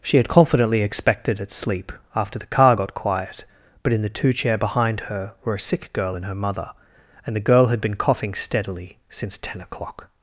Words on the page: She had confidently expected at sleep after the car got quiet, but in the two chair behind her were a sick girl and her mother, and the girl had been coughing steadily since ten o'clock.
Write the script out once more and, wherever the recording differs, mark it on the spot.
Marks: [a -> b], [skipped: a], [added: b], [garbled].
She had confidently expected at sleep after the car got quiet, but in the two chair behind her were a sick girl and her mother, and the girl had been coughing steadily since ten o'clock.